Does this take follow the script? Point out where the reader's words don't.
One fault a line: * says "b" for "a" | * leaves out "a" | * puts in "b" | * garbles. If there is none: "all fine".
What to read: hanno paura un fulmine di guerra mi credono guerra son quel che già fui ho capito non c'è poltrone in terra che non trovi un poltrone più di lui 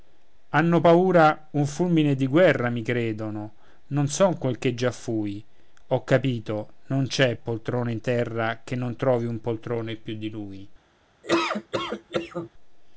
* says "non" for "guerra"